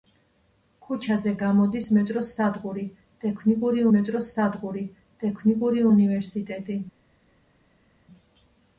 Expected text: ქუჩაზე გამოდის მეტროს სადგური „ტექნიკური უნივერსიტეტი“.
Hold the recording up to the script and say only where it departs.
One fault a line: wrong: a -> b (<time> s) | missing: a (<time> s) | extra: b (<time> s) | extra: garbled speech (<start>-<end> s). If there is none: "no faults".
extra: მეტროს სადგური ტექნიკური (4.0 s)